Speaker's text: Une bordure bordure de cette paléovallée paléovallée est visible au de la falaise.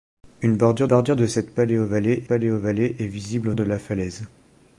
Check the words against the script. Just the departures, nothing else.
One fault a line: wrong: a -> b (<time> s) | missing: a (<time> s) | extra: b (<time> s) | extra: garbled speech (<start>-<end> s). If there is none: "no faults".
no faults